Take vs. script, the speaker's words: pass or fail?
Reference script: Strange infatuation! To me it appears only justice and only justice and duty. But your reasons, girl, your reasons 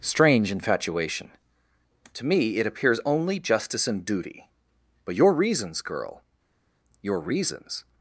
fail